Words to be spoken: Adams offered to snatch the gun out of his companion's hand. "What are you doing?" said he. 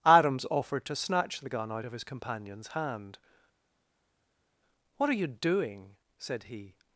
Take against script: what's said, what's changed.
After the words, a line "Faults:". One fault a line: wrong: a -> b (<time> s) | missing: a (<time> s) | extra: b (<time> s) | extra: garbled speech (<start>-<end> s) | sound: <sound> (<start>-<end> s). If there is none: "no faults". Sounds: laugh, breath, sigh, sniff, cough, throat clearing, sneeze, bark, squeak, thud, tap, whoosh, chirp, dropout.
Adams offered to snatch the gun out of his companion's hand. "What are you doing?" said he.
Faults:
no faults